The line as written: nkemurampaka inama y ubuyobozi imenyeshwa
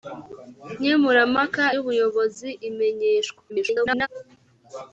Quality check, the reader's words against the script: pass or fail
fail